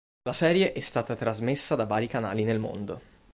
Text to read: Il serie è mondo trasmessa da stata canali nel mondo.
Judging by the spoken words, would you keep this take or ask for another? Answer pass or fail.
fail